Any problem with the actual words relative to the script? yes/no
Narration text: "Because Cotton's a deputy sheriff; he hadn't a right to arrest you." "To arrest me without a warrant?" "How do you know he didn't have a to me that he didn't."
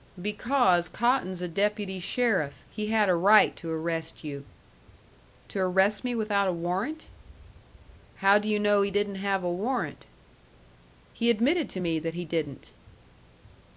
yes